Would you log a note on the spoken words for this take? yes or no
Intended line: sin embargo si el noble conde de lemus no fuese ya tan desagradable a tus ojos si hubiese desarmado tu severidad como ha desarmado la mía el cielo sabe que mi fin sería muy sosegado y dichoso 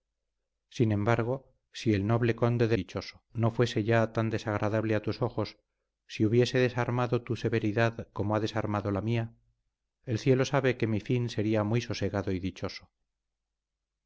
yes